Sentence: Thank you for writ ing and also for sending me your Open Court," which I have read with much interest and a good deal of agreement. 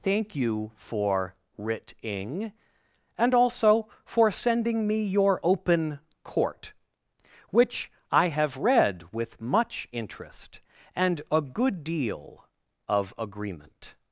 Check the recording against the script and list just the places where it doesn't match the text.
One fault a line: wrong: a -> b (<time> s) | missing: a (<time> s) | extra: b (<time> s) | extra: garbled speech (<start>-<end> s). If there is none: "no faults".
no faults